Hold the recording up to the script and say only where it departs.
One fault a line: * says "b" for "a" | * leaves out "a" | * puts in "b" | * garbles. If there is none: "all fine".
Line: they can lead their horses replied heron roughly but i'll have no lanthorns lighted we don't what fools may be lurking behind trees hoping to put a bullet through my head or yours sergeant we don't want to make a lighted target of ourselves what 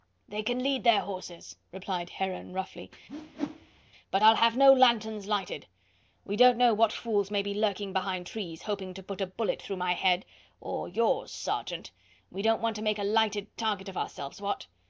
* puts in "know"